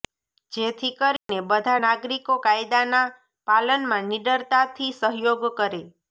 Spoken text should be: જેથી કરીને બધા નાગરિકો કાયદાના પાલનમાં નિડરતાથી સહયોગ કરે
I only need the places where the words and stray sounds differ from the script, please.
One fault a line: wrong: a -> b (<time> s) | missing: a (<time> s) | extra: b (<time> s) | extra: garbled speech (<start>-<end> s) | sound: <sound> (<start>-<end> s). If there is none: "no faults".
sound: dropout (1.2-1.3 s)